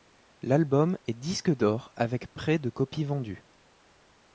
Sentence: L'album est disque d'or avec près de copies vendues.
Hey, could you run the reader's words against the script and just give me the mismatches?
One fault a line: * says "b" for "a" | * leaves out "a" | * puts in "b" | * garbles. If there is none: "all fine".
all fine